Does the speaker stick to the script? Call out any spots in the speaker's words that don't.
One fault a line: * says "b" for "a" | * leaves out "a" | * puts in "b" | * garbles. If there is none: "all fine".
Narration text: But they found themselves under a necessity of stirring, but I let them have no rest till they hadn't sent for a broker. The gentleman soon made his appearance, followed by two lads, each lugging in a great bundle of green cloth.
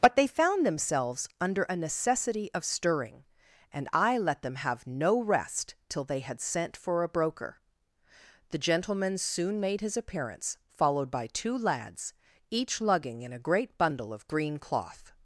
* says "and" for "but"
* says "had" for "hadn't"